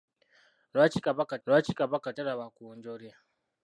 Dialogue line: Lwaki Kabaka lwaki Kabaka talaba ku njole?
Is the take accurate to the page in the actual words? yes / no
yes